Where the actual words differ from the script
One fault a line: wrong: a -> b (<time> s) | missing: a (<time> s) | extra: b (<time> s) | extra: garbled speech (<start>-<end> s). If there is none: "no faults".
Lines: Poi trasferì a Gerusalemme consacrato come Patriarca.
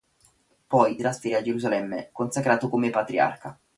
no faults